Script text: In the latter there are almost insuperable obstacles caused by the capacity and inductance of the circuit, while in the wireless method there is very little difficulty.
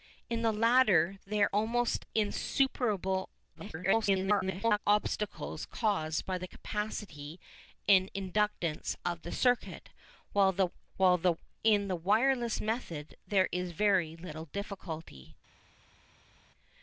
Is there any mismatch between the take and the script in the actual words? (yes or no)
yes